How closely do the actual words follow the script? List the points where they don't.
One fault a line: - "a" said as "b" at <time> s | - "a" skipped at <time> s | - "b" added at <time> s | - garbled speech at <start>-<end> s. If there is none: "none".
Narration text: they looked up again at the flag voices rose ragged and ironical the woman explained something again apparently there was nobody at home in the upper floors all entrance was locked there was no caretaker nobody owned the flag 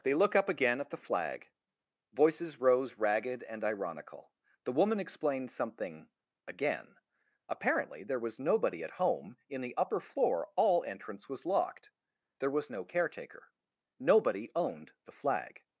- "looked" said as "look" at 0.1 s
- "floors" said as "floor" at 10.0 s